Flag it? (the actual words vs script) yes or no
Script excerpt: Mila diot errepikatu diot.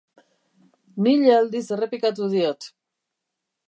yes